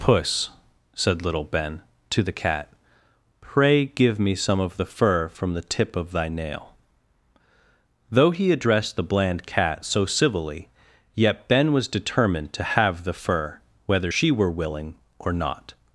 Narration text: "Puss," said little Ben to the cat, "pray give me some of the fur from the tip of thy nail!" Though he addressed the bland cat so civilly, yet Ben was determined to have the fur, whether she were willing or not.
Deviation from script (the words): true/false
false